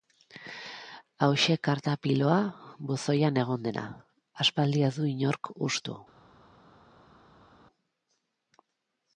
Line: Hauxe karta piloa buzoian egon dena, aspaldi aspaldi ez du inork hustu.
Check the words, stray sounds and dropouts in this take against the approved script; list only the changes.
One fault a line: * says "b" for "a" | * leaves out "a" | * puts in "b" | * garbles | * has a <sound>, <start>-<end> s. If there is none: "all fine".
* leaves out "aspaldi"